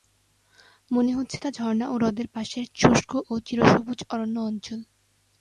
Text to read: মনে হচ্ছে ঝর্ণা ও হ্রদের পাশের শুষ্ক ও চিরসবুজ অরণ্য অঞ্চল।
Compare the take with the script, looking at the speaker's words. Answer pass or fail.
fail